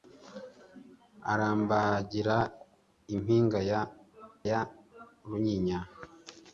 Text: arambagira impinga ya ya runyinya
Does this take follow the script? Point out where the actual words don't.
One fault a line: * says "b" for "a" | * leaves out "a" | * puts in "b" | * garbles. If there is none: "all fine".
all fine